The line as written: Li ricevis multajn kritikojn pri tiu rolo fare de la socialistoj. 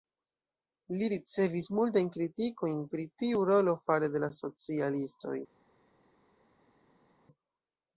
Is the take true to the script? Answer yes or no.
yes